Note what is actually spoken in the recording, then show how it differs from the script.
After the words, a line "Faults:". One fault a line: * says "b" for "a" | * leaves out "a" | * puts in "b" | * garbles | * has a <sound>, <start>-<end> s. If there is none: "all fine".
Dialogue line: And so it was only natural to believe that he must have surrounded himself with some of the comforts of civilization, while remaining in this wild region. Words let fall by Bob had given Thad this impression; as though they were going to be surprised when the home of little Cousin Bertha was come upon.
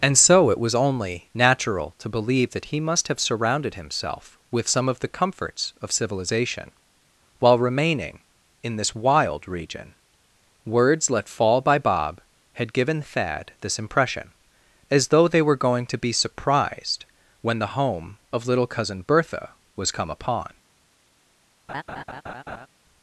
And so it was only natural to believe that he must have surrounded himself with some of the comforts of civilization, while remaining in this wild region. Words let fall by Bob had given Thad this impression; as though they were going to be surprised when the home of little Cousin Bertha was come upon.
Faults:
* has a laugh, 21.7-22.7 s